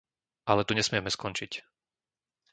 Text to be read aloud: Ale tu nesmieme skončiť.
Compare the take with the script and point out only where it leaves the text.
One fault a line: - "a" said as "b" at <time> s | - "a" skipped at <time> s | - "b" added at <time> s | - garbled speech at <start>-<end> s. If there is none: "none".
none